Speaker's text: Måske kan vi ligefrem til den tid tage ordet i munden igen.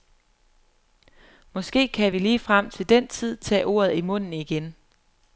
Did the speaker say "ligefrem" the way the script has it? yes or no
yes